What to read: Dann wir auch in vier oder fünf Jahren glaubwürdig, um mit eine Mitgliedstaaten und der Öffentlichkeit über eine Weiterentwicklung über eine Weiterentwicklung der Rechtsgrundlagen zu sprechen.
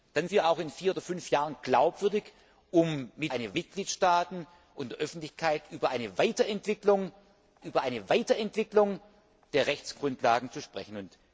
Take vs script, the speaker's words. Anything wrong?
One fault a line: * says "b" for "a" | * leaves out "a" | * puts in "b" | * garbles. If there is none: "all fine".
all fine